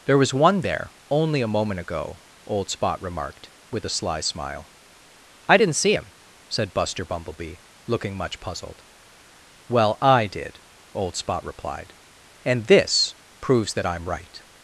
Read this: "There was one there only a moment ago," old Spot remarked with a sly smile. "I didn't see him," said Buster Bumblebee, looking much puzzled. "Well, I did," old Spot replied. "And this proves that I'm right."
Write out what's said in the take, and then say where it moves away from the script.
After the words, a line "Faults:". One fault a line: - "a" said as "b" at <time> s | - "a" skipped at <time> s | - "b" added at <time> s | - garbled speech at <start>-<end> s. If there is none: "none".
"There was one there only a moment ago," old Spot remarked with a sly smile. "I didn't see him," said Buster Bumblebee, looking much puzzled. "Well, I did," old Spot replied. "And this proves that I'm right."
Faults:
none